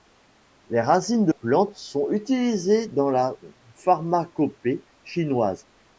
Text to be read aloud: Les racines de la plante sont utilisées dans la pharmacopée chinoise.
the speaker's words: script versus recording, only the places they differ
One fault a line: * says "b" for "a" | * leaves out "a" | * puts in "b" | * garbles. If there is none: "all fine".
* leaves out "la"